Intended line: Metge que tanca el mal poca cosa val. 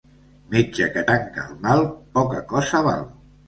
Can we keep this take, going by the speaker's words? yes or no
yes